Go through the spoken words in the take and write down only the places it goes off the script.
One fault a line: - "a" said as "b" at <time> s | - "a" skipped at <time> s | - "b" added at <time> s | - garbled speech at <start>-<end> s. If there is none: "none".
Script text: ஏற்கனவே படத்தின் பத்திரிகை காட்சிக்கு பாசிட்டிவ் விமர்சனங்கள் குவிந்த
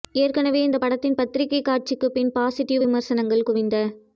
- "இந்த" added at 0.6 s
- "பின்" added at 2.1 s